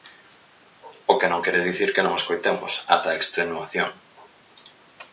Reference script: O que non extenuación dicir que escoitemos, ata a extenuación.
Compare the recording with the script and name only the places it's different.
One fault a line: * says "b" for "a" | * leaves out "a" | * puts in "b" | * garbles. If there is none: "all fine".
* says "quere" for "extenuación"
* puts in "non"